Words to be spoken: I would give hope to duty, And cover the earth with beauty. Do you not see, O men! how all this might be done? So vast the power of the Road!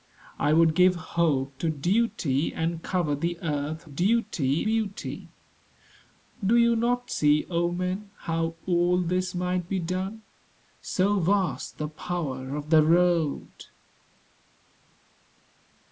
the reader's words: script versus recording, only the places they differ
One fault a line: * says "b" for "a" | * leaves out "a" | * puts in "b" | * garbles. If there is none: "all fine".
* says "duty" for "with"